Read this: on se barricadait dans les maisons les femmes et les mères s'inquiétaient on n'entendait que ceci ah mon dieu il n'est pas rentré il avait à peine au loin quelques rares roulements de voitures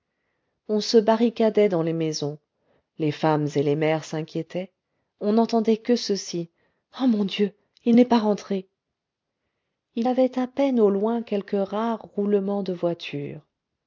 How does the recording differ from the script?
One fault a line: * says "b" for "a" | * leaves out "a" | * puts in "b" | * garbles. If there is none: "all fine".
all fine